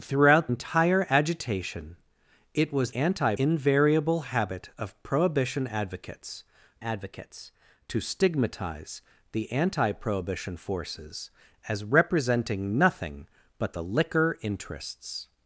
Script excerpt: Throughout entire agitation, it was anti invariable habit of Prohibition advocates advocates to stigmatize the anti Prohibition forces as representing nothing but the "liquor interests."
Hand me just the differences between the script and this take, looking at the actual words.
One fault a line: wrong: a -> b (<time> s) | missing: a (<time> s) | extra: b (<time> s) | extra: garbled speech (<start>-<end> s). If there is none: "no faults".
no faults